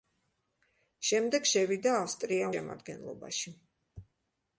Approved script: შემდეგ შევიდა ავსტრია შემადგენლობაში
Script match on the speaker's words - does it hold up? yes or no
yes